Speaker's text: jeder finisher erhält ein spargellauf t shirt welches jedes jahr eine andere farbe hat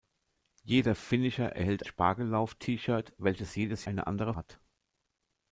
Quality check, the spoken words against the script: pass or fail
fail